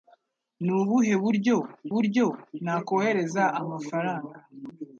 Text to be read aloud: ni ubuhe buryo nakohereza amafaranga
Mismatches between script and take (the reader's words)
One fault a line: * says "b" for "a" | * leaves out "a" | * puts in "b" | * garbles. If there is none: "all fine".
* puts in "buryo"